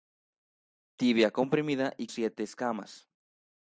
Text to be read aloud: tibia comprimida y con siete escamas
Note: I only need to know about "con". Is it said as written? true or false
false